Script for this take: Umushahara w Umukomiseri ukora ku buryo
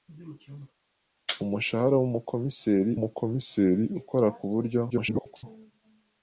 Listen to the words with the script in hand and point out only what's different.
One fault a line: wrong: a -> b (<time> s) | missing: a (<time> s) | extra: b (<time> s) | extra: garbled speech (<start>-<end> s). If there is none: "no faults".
extra: Umukomiseri (3.0 s)
extra: garbled speech (4.9-5.4 s)